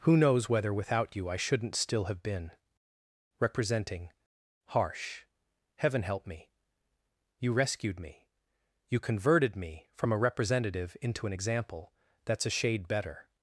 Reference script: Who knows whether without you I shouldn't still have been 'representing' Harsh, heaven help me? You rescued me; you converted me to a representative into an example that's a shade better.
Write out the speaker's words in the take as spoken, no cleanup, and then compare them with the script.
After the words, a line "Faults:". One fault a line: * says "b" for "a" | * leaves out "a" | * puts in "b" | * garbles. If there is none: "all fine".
Who knows whether without you I shouldn't still have been 'representing' Harsh, heaven help me? You rescued me; you converted me from a representative into an example that's a shade better.
Faults:
* says "from" for "to"